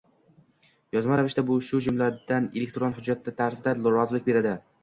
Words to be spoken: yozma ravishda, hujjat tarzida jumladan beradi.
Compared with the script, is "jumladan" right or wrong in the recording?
wrong